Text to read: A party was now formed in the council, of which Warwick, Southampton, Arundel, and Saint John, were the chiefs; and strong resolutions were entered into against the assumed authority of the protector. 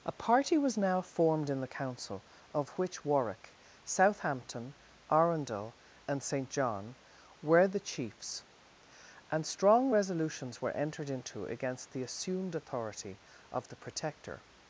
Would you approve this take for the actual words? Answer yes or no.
yes